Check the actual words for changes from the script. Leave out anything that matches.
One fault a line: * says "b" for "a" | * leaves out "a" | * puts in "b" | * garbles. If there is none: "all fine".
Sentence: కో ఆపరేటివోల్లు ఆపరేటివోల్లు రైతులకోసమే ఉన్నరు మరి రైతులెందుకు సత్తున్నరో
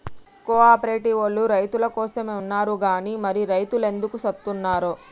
* leaves out "ఆపరేటివోల్లు"
* puts in "గని"